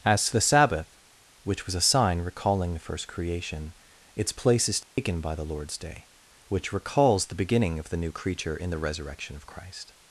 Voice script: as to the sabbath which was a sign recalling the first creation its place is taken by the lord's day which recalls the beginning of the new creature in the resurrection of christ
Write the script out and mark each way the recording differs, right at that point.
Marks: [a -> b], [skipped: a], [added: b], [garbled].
as to the sabbath which was a sign recalling the first creation its place is taken by the lord's day which recalls the beginning of the new creature in the resurrection of christ